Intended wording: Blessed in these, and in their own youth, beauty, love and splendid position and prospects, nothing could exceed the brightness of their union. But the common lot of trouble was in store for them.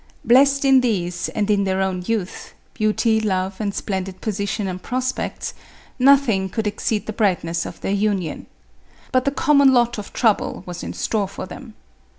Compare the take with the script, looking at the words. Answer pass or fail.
pass